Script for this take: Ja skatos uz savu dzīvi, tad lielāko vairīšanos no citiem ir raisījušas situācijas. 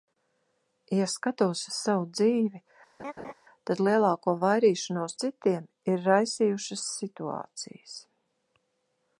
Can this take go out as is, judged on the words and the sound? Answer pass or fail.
fail